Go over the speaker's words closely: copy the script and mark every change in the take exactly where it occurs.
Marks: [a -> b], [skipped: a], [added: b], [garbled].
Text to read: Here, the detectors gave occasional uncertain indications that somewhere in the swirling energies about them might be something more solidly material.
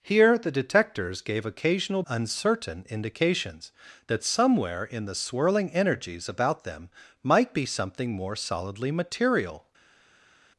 Here, the detectors gave occasional uncertain indications that somewhere in the swirling energies about them might be something more solidly material.